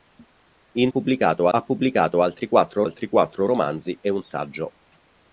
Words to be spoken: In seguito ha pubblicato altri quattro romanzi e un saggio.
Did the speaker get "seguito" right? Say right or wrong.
wrong